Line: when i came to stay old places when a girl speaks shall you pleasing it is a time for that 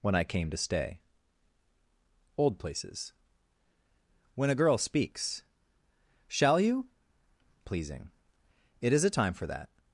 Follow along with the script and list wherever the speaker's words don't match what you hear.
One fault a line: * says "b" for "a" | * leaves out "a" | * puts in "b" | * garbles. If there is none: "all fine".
all fine